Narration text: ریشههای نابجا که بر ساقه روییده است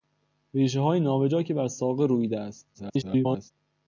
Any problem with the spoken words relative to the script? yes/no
yes